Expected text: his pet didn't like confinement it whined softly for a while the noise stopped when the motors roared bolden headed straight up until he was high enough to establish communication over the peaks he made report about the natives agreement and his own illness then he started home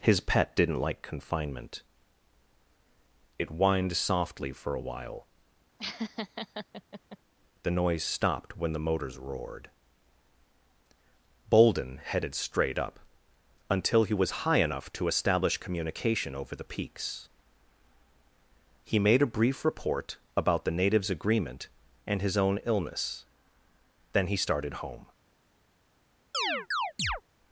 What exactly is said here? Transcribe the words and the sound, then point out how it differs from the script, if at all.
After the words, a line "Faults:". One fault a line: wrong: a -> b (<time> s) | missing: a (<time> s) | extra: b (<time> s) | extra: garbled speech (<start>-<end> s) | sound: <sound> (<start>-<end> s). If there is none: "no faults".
his pet didn't like confinement it whined softly for a while the noise stopped when the motors roared bolden headed straight up until he was high enough to establish communication over the peaks he made a brief report about the natives agreement and his own illness then he started home
Faults:
sound: laugh (5.8-7.2 s)
extra: a brief (19.2 s)
sound: chirp (26.3-27.2 s)